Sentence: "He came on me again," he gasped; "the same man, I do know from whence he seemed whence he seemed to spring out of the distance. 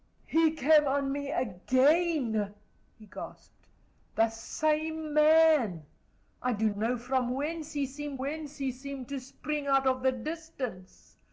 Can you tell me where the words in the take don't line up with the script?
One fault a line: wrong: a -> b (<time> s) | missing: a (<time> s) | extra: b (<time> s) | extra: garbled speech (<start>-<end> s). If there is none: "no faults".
no faults